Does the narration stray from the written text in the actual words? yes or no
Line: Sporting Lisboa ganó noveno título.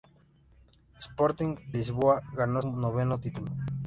no